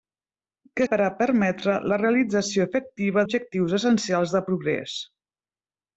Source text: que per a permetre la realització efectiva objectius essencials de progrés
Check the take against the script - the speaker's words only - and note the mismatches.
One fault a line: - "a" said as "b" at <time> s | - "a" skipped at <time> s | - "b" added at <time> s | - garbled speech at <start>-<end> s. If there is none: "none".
none